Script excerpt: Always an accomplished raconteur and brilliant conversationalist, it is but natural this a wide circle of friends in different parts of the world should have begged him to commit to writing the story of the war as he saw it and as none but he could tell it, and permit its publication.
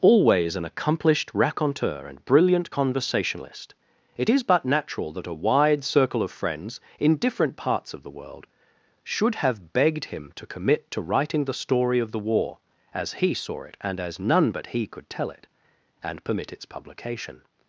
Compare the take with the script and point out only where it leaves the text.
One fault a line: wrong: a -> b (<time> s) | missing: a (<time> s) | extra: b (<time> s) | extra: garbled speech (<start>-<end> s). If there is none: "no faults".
wrong: this -> that (5.1 s)